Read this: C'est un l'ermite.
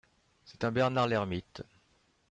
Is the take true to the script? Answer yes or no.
no